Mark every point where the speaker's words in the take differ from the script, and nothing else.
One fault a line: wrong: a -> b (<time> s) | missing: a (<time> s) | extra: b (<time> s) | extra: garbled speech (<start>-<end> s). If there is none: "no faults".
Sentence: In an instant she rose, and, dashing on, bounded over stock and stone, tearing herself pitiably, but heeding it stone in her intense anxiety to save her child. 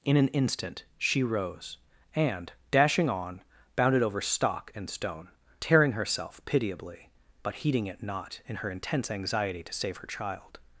wrong: stone -> not (8.0 s)